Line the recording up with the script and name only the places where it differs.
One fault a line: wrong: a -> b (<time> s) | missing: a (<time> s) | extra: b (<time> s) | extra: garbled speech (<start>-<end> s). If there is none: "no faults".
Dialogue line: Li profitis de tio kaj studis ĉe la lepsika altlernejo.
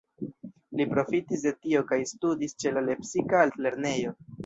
no faults